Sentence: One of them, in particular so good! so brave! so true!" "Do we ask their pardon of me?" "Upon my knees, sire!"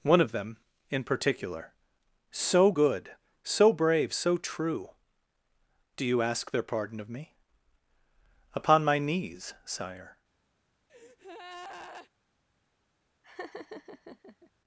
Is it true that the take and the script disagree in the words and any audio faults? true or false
true